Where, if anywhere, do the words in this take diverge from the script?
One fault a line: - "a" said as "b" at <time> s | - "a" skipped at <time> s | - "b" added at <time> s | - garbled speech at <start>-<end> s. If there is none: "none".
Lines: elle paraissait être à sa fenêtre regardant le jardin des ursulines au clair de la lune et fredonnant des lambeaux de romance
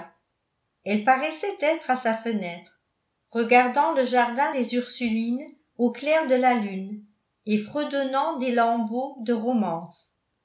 none